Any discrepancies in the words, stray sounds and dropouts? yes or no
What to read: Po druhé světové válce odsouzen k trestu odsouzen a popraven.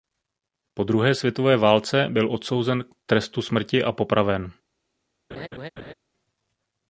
yes